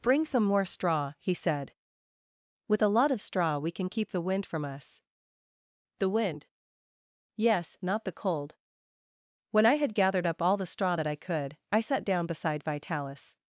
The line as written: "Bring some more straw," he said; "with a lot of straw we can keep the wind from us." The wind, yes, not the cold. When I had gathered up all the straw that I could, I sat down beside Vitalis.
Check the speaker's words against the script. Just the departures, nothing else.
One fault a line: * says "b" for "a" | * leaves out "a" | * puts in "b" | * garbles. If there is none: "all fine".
all fine